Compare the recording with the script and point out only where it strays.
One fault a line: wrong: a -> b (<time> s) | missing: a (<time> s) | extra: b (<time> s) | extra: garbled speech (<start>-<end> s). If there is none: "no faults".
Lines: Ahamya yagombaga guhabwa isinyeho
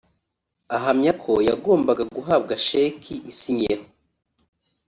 extra: ko (1.2 s)
extra: sheki (2.7 s)